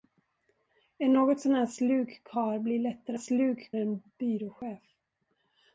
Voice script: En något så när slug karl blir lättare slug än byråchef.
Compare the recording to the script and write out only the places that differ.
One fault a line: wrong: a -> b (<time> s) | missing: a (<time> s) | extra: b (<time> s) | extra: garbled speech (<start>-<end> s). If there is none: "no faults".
no faults